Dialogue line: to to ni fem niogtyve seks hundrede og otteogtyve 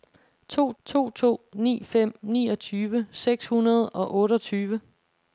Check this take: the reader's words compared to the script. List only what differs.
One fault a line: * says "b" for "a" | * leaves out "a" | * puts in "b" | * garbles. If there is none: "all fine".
* puts in "to"